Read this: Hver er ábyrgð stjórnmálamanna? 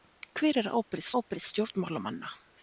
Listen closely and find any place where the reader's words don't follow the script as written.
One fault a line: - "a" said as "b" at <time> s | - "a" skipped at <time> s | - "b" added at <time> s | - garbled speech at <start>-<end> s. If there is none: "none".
- "ábyrgð" added at 1.2 s